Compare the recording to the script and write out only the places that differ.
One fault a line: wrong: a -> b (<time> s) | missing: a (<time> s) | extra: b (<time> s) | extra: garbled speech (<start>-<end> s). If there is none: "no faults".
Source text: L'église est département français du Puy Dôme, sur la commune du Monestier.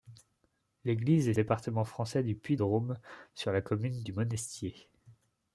no faults